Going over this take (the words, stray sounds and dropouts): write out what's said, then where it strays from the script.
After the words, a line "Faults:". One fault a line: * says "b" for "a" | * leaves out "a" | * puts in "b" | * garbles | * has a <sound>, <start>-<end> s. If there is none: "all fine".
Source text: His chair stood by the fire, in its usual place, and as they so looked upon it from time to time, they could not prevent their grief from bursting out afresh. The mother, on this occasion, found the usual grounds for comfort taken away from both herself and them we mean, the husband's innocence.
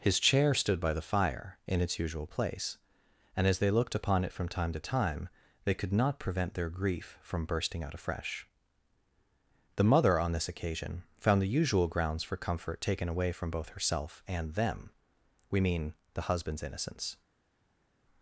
His chair stood by the fire, in its usual place, and as they looked upon it from time to time, they could not prevent their grief from bursting out afresh. The mother, on this occasion, found the usual grounds for comfort taken away from both herself and them we mean, the husband's innocence.
Faults:
* leaves out "so"